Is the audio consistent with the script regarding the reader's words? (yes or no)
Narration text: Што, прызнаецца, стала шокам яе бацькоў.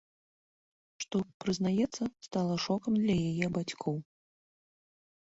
no